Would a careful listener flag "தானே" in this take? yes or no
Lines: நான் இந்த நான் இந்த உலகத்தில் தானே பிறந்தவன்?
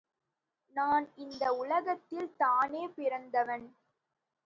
no